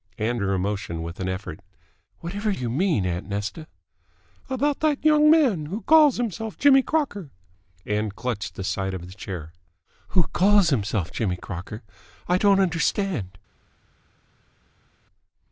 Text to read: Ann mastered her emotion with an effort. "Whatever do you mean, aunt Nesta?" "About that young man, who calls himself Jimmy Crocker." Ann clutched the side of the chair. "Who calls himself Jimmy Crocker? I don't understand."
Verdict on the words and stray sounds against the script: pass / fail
fail